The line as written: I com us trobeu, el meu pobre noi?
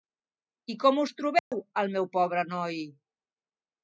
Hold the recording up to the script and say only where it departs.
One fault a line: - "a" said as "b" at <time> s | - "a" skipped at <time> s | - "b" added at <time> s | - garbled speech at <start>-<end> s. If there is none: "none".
none